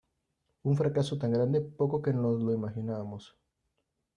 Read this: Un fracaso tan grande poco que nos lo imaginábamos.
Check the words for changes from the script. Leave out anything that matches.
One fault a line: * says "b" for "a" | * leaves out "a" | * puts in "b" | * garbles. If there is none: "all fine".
all fine